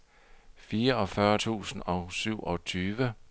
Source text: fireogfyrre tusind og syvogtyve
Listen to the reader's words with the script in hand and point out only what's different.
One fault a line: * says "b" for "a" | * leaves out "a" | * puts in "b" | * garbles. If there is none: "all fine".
all fine